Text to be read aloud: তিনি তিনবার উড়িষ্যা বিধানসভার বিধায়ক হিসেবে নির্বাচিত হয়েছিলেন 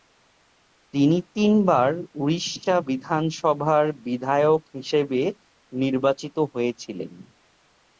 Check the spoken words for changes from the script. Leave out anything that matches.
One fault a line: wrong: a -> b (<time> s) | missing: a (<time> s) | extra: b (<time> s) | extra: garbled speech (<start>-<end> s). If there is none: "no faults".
no faults